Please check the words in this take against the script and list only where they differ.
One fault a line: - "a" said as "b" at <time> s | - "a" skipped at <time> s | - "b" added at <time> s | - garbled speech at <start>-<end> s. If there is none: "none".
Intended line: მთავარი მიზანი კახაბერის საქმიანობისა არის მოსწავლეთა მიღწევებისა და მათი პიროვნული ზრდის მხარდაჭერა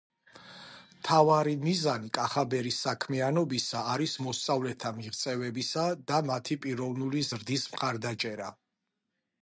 none